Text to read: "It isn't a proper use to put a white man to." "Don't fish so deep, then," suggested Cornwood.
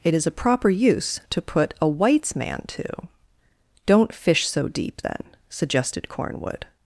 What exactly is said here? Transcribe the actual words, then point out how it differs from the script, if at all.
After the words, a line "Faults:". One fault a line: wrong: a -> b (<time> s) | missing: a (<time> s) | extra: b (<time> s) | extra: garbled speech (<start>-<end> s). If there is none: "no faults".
"It is a proper use to put a whites man to." "Don't fish so deep, then," suggested Cornwood.
Faults:
wrong: isn't -> is (0.1 s)
wrong: white -> whites (1.9 s)